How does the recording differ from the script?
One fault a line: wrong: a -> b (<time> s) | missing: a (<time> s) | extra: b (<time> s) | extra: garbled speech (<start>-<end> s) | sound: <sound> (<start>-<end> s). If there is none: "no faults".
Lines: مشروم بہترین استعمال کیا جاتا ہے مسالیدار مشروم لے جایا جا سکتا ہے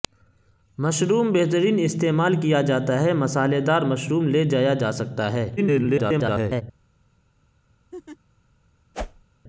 extra: garbled speech (5.6-6.6 s)
sound: laugh (7.9-8.2 s)
sound: whoosh (8.9-9.3 s)